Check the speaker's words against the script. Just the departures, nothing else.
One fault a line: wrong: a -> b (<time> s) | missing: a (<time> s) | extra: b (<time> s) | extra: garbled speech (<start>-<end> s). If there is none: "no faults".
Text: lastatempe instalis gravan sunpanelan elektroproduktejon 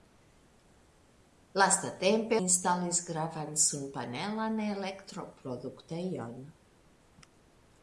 no faults